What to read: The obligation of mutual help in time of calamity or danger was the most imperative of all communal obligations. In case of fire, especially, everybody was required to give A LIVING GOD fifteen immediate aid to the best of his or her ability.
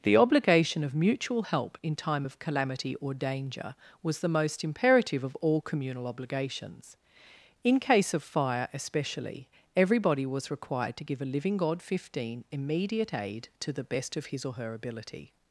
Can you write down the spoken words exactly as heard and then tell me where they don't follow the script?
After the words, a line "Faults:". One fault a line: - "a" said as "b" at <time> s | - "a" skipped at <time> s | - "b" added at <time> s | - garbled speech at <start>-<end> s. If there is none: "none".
The obligation of mutual help in time of calamity or danger was the most imperative of all communal obligations. In case of fire, especially, everybody was required to give A LIVING GOD fifteen immediate aid to the best of his or her ability.
Faults:
none